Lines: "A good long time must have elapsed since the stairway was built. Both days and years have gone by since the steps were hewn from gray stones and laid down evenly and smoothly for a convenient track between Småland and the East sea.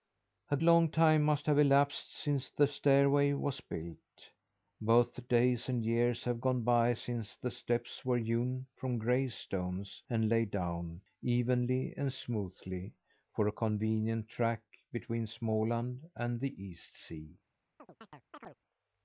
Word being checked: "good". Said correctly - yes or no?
no